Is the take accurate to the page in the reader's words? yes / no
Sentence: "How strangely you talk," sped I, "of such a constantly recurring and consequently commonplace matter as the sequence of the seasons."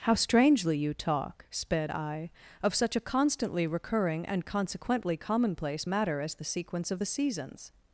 yes